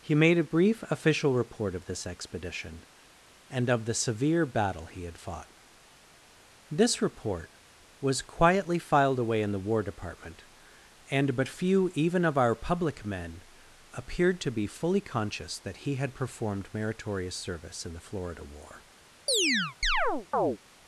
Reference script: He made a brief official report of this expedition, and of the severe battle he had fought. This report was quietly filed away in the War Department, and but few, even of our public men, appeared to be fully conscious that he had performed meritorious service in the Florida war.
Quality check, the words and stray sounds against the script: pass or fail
fail